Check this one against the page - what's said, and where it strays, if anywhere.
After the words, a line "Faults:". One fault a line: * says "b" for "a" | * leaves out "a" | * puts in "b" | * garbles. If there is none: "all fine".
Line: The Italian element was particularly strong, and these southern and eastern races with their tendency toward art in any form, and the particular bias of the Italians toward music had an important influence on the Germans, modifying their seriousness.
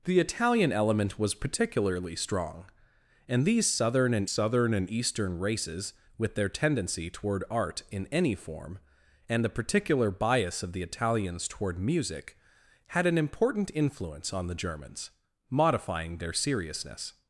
The Italian element was particularly strong, and these southern and southern and eastern races with their tendency toward art in any form, and the particular bias of the Italians toward music had an important influence on the Germans, modifying their seriousness.
Faults:
* puts in "southern and"